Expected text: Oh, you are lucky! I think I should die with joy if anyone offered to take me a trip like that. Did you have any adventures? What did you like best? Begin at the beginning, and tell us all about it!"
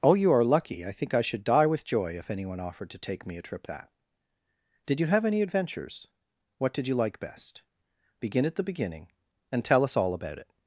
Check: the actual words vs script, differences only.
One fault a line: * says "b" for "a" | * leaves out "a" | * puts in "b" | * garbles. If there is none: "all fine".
* leaves out "like"